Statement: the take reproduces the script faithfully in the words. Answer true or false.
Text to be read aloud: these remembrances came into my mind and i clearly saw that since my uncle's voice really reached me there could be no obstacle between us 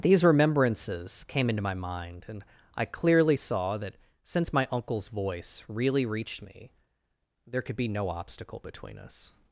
true